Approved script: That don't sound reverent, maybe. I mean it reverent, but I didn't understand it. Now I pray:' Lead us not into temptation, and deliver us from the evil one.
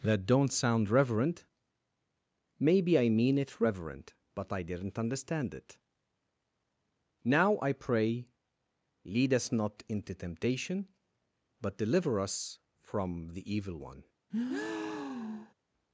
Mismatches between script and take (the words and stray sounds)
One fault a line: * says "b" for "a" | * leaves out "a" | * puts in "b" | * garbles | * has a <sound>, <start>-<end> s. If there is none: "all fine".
* says "but" for "and"
* has a breath, 14.3-15.5 s